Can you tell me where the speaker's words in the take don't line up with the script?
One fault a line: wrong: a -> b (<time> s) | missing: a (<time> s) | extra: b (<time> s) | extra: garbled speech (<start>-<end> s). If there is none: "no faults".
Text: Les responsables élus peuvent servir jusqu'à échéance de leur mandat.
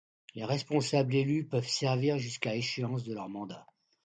no faults